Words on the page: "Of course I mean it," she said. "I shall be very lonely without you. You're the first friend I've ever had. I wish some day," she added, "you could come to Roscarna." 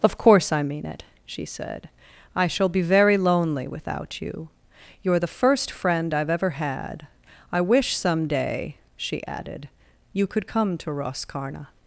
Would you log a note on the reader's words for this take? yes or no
no